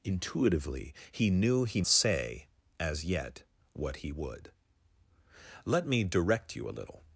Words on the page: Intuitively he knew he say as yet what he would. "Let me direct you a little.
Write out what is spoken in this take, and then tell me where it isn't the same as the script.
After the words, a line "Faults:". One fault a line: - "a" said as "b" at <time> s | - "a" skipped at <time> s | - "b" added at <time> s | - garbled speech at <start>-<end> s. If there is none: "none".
Intuitively he knew he say as yet what he would. "Let me direct you a little.
Faults:
none